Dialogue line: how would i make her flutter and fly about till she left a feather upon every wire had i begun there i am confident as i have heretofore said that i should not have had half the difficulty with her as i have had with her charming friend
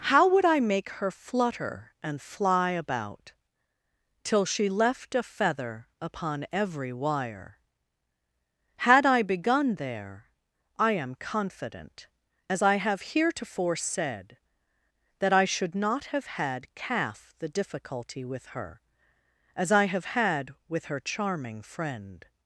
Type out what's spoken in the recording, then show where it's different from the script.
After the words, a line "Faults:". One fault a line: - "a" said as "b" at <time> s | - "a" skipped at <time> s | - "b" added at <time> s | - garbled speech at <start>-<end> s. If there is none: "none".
how would i make her flutter and fly about till she left a feather upon every wire had i begun there i am confident as i have heretofore said that i should not have had calf the difficulty with her as i have had with her charming friend
Faults:
- "half" said as "calf" at 16.7 s